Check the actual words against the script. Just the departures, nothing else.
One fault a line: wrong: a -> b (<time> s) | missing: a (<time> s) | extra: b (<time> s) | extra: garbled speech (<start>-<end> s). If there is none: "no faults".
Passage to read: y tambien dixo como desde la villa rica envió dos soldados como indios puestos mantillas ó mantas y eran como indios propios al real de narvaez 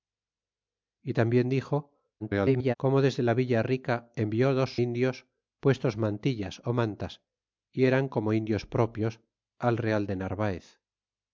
extra: garbled speech (2.2-2.7 s)
missing: soldados como (4.7 s)